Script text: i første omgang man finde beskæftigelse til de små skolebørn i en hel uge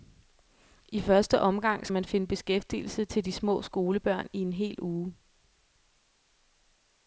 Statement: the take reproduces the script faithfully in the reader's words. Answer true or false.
true